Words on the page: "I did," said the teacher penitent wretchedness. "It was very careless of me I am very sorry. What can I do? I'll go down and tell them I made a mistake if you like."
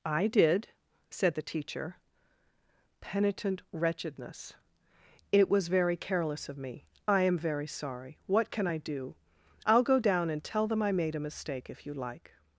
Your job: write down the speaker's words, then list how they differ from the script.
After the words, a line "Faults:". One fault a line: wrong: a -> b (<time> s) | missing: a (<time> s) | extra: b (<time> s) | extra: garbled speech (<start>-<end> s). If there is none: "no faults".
"I did," said the teacher penitent wretchedness. "It was very careless of me I am very sorry. What can I do? I'll go down and tell them I made a mistake if you like."
Faults:
no faults